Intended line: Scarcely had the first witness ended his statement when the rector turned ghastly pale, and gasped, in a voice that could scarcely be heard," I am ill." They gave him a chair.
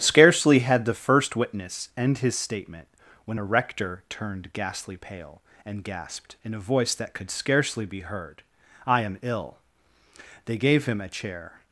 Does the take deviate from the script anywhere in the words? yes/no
yes